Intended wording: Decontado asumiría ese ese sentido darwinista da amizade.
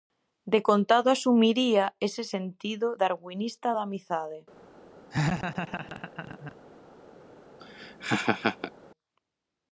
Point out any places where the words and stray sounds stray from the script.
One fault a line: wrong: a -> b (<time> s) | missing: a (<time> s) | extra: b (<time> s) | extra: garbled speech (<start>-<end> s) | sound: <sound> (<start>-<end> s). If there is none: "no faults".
missing: ese (2.2 s)
sound: laugh (5.1-6.6 s)
sound: laugh (7.6-8.7 s)